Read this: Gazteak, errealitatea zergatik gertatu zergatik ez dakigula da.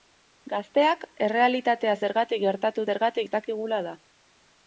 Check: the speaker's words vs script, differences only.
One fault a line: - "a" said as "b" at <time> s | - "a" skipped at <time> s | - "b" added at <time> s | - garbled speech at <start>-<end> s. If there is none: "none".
none